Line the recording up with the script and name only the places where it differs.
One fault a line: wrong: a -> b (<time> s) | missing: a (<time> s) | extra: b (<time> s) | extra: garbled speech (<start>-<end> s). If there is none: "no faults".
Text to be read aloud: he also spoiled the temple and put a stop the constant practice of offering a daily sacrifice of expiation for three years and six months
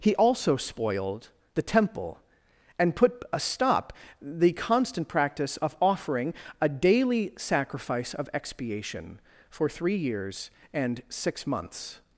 no faults